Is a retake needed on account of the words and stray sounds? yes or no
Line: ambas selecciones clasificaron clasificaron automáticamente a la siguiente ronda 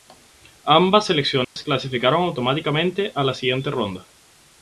yes